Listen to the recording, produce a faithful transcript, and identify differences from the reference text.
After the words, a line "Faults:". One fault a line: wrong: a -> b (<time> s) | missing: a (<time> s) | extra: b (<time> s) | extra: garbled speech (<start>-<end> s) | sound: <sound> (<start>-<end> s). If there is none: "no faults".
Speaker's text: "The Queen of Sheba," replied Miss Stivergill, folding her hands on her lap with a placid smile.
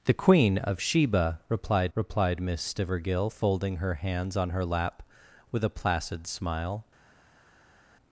"The Queen of Sheba," replied replied Miss Stivergill, folding her hands on her lap with a placid smile.
Faults:
extra: replied (1.9 s)